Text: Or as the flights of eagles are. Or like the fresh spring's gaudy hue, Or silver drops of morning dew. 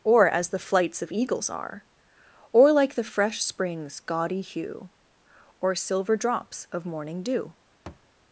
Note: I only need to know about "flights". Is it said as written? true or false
true